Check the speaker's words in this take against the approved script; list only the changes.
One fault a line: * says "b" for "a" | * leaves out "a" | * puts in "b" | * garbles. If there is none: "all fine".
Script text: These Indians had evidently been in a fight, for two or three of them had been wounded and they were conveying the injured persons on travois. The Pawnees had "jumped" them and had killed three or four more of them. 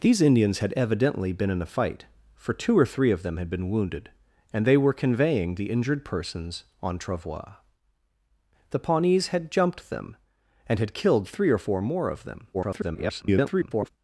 * garbles